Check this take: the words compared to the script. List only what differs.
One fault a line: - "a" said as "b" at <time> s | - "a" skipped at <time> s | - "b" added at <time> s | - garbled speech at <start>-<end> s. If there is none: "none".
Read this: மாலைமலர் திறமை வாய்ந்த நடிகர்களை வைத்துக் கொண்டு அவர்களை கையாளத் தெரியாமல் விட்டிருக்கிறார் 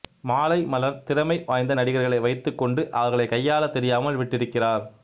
none